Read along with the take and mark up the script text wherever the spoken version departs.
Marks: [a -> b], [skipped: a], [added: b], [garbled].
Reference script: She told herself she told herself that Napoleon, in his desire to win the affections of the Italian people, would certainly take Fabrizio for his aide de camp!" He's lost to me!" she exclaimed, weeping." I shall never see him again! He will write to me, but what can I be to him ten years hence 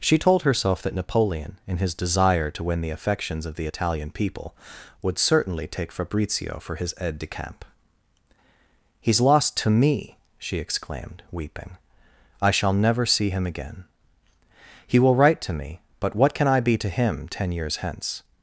She told herself [skipped: she told herself] that Napoleon, in his desire to win the affections of the Italian people, would certainly take Fabrizio for his aide de camp!" He's lost to me!" she exclaimed, weeping." I shall never see him again! He will write to me, but what can I be to him ten years hence